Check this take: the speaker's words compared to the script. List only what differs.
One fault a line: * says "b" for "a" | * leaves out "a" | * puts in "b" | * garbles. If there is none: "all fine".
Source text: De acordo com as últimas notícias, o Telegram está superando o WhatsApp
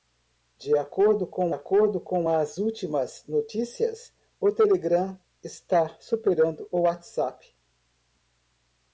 * puts in "acordo com"